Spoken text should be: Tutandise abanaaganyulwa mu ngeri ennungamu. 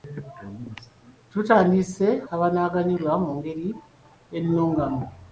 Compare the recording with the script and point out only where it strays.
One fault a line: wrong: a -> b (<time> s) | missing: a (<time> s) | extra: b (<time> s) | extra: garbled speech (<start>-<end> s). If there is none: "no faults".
no faults